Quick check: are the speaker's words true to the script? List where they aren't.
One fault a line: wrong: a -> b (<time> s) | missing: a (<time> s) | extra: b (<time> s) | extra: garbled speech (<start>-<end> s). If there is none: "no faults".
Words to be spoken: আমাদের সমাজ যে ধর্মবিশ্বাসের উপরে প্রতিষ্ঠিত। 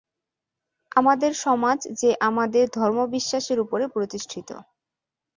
extra: আমাদের (2.3 s)